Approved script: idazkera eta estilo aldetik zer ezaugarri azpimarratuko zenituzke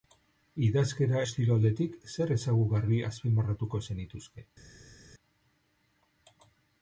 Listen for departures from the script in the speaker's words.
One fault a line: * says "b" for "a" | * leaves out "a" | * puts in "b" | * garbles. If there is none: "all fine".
* leaves out "eta"